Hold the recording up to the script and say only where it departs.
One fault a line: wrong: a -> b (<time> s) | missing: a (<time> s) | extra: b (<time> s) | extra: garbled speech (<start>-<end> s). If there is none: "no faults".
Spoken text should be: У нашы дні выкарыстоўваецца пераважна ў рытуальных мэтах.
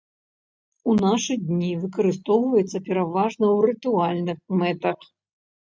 no faults